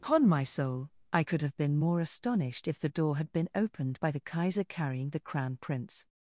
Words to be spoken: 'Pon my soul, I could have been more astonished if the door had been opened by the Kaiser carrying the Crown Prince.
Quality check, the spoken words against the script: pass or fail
pass